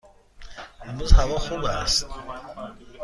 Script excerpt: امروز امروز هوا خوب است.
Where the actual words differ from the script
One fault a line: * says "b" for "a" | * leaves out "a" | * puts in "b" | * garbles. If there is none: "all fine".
* leaves out "امروز"